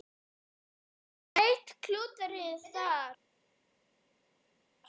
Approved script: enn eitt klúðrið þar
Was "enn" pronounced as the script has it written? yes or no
yes